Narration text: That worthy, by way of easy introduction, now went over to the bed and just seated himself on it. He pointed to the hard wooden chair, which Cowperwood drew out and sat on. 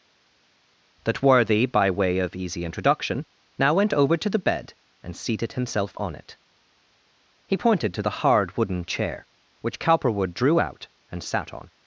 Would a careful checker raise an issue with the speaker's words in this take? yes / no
yes